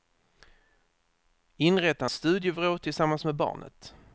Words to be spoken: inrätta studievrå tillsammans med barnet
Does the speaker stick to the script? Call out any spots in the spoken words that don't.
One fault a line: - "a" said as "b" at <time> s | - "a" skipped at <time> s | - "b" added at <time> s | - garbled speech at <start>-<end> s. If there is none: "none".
none